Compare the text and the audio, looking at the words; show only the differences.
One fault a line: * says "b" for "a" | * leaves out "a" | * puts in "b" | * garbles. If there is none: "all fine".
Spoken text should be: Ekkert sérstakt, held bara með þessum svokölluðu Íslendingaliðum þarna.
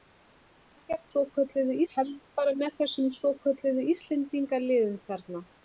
* says "svokölluðu" for "sérstakt"